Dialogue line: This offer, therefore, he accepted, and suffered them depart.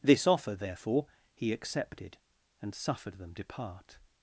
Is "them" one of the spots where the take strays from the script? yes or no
no